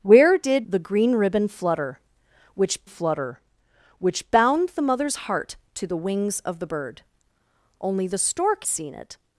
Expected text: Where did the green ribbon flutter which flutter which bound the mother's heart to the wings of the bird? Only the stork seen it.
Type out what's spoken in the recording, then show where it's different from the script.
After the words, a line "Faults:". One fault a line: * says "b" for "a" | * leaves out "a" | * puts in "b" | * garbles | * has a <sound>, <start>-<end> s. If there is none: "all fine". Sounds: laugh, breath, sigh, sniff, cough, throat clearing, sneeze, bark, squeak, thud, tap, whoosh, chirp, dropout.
Where did the green ribbon flutter which flutter which bound the mother's heart to the wings of the bird? Only the stork seen it.
Faults:
all fine